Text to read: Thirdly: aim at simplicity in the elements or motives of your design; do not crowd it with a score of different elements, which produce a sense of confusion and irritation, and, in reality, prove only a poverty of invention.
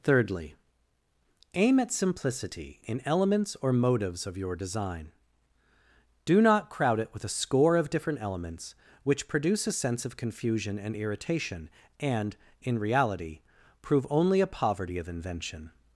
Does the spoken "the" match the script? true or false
false